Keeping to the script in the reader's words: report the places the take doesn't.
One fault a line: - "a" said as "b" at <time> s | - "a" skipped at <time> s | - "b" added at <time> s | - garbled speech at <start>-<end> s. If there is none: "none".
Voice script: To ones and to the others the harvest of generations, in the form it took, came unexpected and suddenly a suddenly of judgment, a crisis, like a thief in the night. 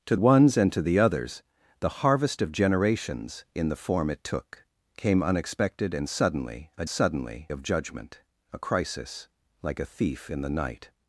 none